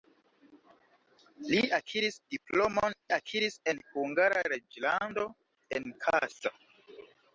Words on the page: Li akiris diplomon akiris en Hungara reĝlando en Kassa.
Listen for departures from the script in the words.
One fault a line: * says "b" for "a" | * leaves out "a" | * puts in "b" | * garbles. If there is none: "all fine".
all fine